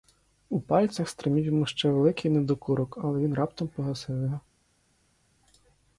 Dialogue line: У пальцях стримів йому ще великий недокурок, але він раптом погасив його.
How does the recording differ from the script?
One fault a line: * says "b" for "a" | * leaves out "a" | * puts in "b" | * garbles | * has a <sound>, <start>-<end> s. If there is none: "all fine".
all fine